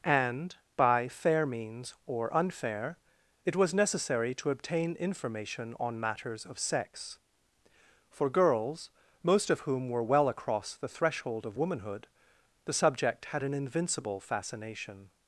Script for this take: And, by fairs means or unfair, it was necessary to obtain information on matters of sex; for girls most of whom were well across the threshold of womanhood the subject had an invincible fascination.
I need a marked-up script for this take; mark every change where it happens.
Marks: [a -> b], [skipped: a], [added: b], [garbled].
And, by [fairs -> fair] means or unfair, it was necessary to obtain information on matters of sex; for girls most of whom were well across the threshold of womanhood the subject had an invincible fascination.